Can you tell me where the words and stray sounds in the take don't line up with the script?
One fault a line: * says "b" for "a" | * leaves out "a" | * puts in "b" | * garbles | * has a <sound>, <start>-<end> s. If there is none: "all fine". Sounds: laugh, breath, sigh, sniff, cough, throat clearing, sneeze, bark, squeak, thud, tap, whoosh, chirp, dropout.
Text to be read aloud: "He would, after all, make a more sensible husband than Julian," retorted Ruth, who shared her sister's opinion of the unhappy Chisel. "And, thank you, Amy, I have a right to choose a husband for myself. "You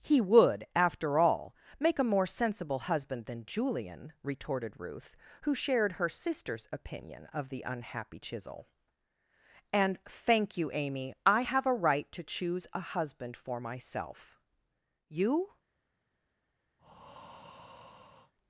* has a breath, 16.8-18.3 s